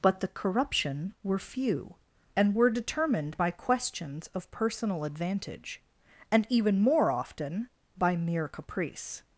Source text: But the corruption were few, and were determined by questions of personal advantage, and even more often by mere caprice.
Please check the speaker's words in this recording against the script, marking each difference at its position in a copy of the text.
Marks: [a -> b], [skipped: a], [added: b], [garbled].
But the corruption were few, and were determined by questions of personal advantage, and even more often by mere caprice.